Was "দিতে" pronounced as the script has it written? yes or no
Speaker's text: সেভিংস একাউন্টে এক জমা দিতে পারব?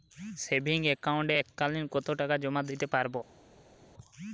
yes